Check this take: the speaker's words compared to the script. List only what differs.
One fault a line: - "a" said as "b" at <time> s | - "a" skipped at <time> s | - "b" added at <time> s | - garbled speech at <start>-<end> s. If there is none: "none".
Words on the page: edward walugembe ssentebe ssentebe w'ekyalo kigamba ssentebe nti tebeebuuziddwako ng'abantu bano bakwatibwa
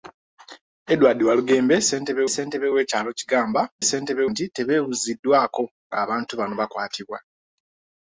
none